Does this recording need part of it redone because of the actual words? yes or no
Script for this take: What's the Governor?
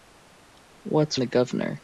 no